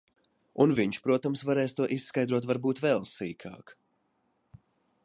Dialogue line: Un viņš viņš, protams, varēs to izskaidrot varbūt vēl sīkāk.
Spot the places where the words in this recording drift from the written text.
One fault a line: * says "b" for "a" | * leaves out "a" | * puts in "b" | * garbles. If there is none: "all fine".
* leaves out "viņš"